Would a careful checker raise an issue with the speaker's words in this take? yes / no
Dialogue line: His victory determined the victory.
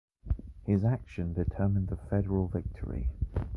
yes